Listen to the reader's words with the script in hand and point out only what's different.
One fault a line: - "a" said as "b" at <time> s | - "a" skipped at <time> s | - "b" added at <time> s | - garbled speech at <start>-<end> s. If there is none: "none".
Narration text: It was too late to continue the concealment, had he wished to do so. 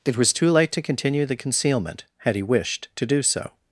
none